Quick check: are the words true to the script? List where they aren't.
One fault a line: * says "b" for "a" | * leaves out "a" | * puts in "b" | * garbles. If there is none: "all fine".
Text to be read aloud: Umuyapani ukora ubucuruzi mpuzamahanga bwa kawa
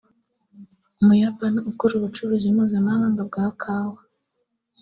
all fine